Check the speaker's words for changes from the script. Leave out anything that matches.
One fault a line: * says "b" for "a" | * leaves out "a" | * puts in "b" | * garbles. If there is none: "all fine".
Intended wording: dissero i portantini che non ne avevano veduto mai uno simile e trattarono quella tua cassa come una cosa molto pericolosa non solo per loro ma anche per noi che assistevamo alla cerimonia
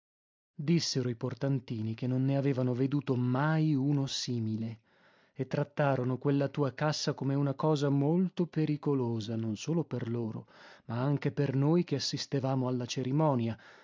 all fine